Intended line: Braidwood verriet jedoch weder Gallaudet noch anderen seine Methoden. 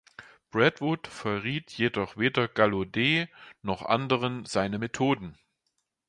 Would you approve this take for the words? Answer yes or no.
yes